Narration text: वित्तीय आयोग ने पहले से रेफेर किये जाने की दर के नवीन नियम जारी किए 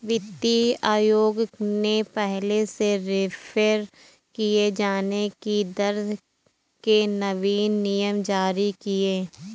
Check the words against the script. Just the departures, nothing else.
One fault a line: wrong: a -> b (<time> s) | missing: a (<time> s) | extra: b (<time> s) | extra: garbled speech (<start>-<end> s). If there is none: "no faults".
no faults